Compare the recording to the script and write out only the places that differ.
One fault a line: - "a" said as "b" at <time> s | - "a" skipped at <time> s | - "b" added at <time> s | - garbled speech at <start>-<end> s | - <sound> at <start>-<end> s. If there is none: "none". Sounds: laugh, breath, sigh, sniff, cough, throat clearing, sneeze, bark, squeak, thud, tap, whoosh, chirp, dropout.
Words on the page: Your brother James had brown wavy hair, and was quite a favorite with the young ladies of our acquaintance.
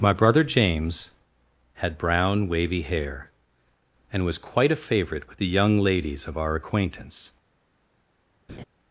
- "Your" said as "My" at 0.0 s
- laugh at 8.5-8.6 s